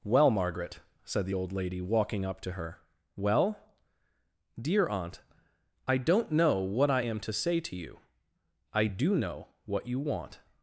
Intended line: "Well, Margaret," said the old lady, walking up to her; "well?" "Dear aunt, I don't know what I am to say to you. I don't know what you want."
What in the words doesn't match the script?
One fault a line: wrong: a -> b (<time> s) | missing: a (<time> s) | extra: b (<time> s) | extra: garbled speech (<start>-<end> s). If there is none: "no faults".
wrong: don't -> do (8.9 s)